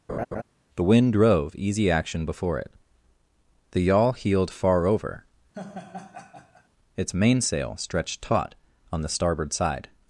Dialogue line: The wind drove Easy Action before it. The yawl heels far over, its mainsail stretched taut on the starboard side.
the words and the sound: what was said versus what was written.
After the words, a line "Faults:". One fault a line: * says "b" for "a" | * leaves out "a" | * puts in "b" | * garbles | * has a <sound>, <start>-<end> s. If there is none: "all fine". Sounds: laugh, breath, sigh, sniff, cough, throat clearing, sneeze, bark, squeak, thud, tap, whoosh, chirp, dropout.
The wind drove Easy Action before it. The yawl heeled far over, its mainsail stretched taut on the starboard side.
Faults:
* has a laugh, 0.1-0.4 s
* says "heeled" for "heels"
* has a laugh, 5.5-6.7 s